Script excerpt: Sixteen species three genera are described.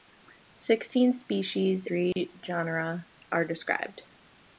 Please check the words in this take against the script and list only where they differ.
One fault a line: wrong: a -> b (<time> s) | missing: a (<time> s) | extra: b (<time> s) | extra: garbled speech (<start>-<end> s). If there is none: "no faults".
no faults